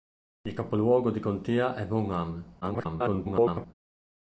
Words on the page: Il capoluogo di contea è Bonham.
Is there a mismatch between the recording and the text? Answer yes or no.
yes